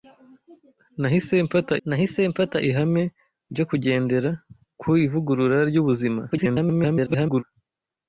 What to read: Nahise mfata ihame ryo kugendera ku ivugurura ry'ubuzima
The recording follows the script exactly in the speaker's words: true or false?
false